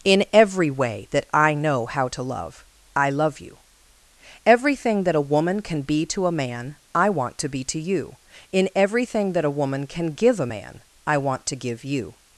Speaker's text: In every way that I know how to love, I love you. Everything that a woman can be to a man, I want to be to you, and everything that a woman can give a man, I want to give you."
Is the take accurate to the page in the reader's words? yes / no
no